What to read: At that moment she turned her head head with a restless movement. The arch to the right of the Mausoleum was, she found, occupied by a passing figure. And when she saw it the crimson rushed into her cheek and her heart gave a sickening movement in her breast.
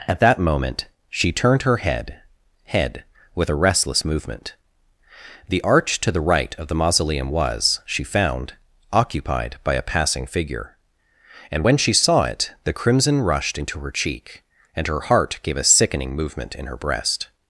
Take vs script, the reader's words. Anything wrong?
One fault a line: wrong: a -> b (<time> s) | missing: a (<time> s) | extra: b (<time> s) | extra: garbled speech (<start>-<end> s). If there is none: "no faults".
no faults